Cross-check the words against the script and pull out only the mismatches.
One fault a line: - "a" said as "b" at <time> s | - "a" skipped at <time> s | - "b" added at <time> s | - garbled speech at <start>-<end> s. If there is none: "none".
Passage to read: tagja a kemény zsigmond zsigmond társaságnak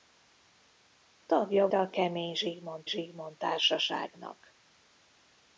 none